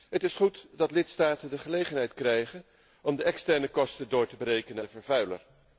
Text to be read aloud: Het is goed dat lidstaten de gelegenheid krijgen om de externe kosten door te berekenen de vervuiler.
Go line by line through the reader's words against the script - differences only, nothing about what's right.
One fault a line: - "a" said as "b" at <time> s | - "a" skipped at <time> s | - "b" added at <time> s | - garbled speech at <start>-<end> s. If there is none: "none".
none